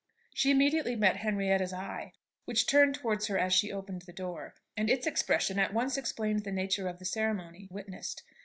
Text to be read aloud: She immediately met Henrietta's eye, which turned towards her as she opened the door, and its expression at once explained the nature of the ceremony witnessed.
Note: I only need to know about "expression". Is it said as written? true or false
true